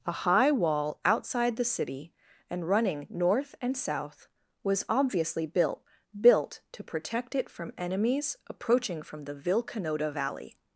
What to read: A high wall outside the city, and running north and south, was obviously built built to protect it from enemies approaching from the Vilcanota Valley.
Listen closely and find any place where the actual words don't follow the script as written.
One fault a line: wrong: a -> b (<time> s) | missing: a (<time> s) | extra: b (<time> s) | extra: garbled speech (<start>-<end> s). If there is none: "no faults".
no faults